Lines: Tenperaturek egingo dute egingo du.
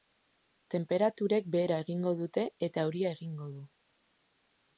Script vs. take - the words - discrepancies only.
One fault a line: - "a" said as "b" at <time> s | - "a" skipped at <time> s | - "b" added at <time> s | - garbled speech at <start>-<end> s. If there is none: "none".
- "behera" added at 1.6 s
- "eta euria" added at 2.7 s